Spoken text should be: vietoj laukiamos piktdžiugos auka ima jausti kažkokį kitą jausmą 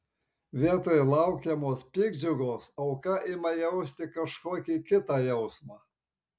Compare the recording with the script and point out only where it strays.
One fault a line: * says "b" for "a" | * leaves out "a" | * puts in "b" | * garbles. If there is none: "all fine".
all fine